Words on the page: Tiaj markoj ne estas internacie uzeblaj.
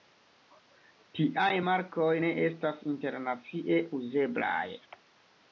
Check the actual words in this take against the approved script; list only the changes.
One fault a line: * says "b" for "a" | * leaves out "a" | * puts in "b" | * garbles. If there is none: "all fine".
all fine